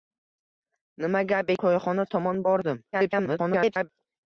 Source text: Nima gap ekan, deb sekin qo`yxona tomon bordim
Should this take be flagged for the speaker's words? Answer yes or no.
yes